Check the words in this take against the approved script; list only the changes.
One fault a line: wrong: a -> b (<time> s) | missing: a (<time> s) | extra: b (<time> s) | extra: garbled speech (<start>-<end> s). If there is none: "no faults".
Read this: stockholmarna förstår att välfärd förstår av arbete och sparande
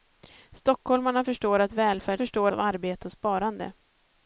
no faults